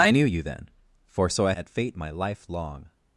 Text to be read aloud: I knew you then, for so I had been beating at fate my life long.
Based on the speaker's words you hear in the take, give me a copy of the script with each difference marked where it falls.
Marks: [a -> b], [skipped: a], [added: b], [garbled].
I knew you then, for so I [skipped: had been beating] at fate my life long.